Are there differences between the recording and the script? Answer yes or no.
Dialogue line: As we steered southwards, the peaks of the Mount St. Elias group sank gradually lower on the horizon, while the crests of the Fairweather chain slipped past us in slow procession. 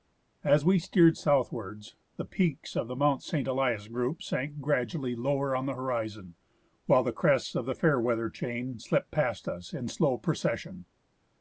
no